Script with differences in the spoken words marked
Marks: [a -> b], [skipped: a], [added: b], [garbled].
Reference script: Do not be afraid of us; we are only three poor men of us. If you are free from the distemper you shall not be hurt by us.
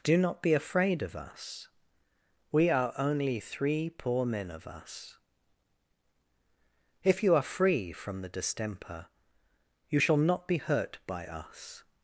Do not be afraid of us; we are only three poor men of us. If you are free from the distemper you shall not be hurt by us.